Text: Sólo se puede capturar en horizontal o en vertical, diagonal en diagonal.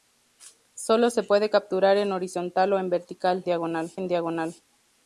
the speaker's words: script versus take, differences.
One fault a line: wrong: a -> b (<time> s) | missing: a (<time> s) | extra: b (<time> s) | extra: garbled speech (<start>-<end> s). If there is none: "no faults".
no faults